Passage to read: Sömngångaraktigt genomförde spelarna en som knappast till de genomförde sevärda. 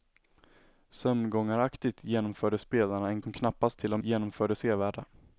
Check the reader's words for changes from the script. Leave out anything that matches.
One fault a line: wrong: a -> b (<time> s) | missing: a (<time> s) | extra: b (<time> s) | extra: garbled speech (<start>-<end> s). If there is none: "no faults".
no faults